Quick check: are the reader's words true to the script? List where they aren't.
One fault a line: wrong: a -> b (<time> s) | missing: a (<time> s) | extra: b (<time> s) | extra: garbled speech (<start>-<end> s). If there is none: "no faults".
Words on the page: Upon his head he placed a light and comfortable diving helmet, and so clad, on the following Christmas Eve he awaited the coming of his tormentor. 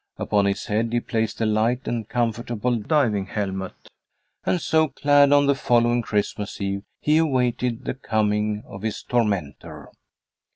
no faults